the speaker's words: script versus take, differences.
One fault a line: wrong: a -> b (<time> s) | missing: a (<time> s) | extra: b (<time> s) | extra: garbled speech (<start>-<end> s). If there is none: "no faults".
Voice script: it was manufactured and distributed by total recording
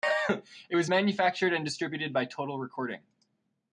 no faults